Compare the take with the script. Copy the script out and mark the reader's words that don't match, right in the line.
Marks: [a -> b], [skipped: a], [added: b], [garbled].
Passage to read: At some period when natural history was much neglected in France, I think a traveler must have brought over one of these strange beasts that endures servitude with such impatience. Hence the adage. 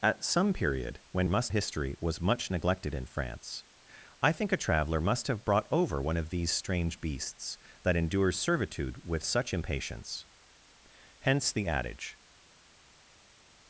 At some period when [natural -> must] history was much neglected in France, I think a traveler must have brought over one of these strange beasts that endures servitude with such impatience. Hence the adage.